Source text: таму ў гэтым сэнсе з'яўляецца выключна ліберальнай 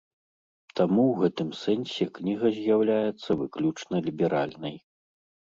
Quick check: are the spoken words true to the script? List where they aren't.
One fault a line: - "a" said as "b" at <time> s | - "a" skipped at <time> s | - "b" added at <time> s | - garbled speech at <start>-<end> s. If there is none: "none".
- "кніга" added at 2.1 s